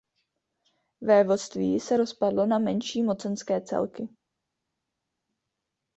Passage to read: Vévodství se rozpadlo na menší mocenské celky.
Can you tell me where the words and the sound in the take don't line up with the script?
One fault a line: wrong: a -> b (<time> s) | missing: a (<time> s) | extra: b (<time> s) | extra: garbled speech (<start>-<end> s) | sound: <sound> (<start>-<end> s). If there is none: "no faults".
no faults